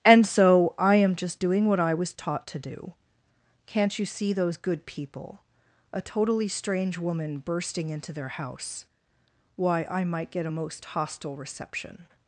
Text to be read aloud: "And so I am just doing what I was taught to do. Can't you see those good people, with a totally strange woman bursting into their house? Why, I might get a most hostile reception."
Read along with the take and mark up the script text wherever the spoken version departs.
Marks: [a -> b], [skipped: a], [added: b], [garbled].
"And so I am just doing what I was taught to do. Can't you see those good people, [skipped: with] a totally strange woman bursting into their house? Why, I might get a most hostile reception."